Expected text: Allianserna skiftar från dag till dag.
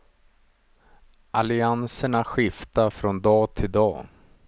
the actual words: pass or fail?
pass